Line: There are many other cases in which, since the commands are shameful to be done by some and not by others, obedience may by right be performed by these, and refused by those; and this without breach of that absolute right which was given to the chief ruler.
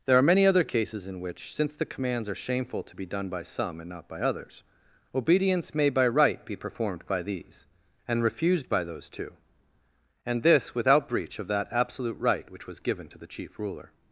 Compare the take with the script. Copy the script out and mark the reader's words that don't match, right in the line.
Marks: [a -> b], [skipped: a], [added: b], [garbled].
There are many other cases in which, since the commands are shameful to be done by some and not by others, obedience may by right be performed by these, and refused by those; [added: two] and this without breach of that absolute right which was given to the chief ruler.